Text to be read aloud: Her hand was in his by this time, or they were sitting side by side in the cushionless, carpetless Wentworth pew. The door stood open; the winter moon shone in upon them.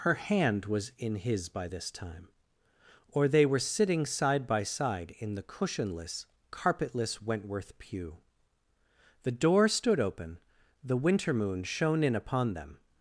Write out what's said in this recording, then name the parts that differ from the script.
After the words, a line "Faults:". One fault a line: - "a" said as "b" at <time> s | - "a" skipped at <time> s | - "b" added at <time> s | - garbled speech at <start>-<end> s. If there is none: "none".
Her hand was in his by this time, or they were sitting side by side in the cushionless, carpetless Wentworth pew. The door stood open; the winter moon shone in upon them.
Faults:
none